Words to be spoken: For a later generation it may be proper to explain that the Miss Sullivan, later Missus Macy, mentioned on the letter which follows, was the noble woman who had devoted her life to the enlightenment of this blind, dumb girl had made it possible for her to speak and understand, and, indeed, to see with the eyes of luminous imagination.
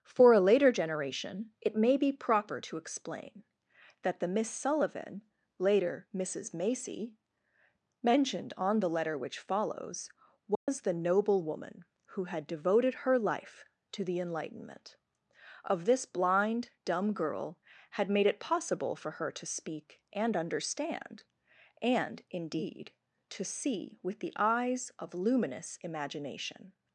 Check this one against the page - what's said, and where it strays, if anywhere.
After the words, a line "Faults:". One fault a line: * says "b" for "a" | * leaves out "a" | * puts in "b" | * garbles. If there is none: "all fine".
For a later generation it may be proper to explain that the Miss Sullivan, later Missus Macy, mentioned on the letter which follows, was the noble woman who had devoted her life to the enlightenment of this blind, dumb girl had made it possible for her to speak and understand, and, indeed, to see with the eyes of luminous imagination.
Faults:
all fine